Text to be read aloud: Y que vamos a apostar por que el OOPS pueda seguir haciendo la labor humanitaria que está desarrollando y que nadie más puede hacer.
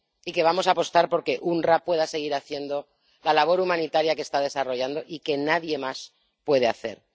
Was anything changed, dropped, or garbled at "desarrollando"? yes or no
no